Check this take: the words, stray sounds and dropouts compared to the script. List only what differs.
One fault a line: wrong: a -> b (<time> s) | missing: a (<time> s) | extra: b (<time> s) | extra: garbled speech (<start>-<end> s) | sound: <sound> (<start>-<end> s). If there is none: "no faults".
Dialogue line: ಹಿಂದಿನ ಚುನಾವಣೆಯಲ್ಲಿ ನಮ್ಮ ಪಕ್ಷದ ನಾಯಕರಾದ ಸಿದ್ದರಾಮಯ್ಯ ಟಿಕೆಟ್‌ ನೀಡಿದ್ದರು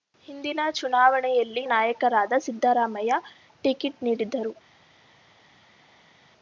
missing: ನಮ್ಮ ಪಕ್ಷದ (1.6 s)